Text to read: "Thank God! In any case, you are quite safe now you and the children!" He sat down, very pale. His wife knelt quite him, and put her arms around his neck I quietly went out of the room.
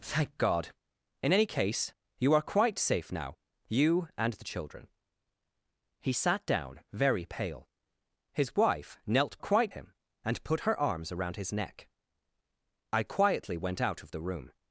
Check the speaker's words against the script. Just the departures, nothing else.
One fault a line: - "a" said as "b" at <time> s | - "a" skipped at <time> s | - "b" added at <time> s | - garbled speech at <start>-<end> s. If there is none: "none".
none